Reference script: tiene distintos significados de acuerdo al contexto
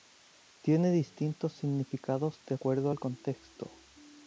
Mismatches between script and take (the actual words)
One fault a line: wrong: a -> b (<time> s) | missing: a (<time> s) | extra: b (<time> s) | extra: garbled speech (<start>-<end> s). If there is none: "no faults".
no faults